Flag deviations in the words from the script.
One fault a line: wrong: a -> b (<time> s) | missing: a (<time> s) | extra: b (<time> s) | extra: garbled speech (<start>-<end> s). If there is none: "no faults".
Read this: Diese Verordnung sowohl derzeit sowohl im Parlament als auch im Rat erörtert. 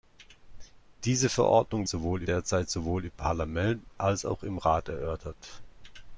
no faults